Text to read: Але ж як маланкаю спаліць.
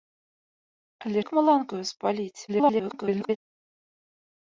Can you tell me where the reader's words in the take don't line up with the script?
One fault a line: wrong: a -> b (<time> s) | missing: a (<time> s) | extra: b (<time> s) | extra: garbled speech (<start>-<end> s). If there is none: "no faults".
missing: ж (1.2 s)
extra: garbled speech (2.5-3.4 s)